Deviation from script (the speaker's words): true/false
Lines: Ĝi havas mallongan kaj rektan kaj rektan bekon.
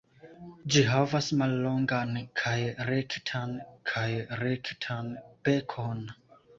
false